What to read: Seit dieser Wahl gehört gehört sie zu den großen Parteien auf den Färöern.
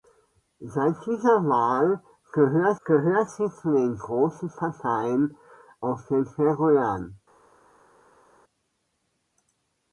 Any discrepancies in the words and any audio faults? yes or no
no